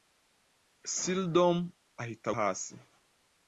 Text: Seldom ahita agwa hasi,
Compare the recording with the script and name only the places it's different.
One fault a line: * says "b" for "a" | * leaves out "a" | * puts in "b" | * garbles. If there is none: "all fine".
* leaves out "agwa"